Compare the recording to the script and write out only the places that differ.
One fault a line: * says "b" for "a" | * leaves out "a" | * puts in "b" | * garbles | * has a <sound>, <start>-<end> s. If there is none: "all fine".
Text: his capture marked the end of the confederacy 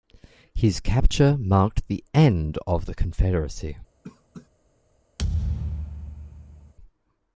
* has a cough, 4.0-4.5 s
* has a thud, 5.2-6.7 s